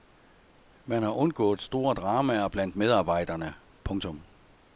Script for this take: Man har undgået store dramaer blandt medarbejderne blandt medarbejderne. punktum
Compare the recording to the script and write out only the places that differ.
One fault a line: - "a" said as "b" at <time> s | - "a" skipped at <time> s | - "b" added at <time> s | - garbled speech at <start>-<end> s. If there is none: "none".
- "blandt medarbejderne" skipped at 3.5 s